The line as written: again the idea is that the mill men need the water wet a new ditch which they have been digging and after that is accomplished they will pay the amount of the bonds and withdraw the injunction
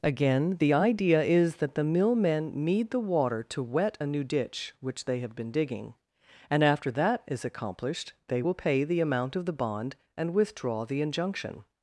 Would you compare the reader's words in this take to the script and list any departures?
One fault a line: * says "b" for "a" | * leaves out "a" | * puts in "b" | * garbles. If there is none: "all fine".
* puts in "to"
* says "bond" for "bonds"